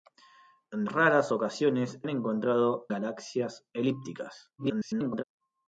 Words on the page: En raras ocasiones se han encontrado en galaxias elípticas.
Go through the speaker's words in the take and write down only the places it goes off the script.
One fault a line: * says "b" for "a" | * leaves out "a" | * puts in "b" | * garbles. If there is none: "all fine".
* leaves out "se"
* leaves out "en"
* garbles